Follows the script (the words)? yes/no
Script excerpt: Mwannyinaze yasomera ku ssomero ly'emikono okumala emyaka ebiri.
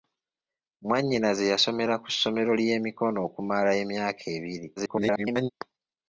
no